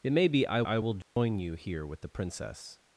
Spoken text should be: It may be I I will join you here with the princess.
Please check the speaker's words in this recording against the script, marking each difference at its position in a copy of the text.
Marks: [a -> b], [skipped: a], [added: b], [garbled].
It may be I I will join you here with the princess.